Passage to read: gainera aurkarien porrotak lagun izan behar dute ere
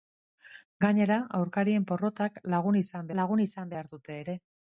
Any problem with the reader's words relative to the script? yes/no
yes